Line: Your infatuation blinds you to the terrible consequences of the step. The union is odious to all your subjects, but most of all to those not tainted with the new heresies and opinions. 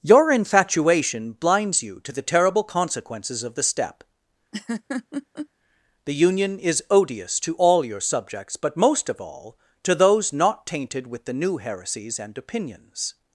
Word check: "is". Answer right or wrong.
right